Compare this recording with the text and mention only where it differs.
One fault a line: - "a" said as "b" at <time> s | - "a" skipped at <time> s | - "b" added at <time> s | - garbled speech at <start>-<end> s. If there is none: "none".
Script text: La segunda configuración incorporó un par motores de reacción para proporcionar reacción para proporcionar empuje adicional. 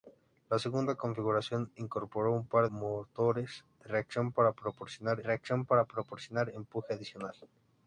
none